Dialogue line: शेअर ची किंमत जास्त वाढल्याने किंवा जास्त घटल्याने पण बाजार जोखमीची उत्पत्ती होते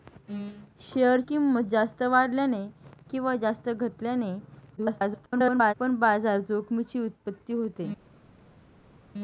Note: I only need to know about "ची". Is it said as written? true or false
false